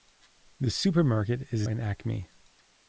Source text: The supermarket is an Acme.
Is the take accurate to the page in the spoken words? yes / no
yes